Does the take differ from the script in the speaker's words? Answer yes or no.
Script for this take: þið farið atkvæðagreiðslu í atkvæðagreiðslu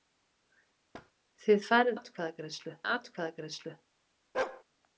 no